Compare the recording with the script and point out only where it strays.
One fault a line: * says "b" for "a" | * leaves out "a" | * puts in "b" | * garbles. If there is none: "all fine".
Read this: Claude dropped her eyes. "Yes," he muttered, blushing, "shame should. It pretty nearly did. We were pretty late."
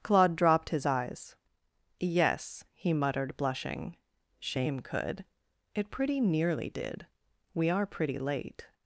* says "his" for "her"
* says "could" for "should"
* says "are" for "were"